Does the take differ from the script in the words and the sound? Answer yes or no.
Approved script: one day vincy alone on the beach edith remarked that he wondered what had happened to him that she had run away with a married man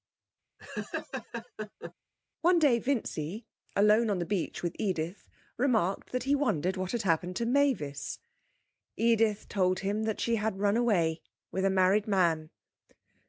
yes